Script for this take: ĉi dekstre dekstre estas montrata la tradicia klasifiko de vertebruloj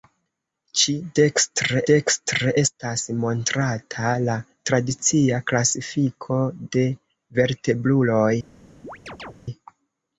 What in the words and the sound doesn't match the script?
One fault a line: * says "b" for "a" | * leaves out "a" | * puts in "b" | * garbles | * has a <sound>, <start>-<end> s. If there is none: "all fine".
* has a chirp, 8.8-9.3 s